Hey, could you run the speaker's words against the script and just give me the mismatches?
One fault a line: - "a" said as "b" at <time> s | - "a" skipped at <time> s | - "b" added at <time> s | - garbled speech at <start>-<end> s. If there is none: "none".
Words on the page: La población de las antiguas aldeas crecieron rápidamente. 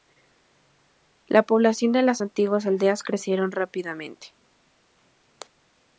none